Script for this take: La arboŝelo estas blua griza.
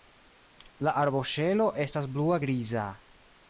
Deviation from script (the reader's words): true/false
false